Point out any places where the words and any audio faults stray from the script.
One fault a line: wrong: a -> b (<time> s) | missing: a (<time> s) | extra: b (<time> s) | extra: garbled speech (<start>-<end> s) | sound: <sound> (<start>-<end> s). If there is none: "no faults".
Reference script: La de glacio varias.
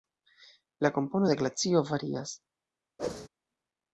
extra: kompono (0.9 s)
sound: whoosh (3.0-3.3 s)